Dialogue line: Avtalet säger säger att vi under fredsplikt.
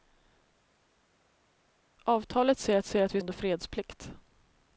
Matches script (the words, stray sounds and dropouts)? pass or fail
pass